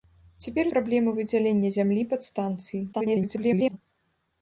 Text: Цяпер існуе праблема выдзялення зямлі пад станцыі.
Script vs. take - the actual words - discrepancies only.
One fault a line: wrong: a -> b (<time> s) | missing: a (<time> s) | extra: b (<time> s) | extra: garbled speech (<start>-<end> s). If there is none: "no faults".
missing: існуе (0.7 s)
extra: garbled speech (2.9-3.8 s)